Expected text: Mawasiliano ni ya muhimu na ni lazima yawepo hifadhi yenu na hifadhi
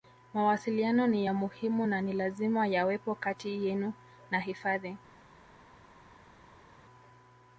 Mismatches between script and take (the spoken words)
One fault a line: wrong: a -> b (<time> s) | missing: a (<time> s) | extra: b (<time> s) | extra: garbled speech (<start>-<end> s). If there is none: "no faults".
wrong: hifadhi -> kati (3.1 s)